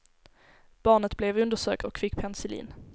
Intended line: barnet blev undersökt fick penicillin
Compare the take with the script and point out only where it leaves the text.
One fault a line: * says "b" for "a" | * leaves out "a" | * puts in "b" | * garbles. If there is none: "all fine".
* puts in "och"